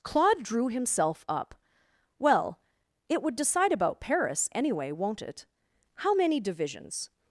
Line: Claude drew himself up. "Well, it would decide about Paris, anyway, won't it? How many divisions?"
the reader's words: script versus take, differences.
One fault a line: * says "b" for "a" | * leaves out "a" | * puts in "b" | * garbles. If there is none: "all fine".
all fine